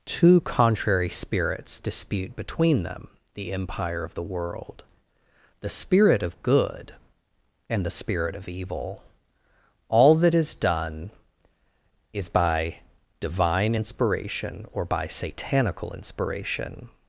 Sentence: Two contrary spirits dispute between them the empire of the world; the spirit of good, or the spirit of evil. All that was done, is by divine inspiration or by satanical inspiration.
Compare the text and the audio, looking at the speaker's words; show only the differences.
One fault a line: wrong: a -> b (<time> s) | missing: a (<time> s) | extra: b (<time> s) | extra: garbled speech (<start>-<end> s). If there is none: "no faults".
wrong: or -> and (7.7 s)
wrong: was -> is (10.3 s)